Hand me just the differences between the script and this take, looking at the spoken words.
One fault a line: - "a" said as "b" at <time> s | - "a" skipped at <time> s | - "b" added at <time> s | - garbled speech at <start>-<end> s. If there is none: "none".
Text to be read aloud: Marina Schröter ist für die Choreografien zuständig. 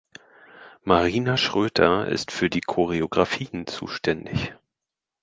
none